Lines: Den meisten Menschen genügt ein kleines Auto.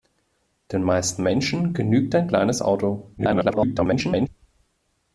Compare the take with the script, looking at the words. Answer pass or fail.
fail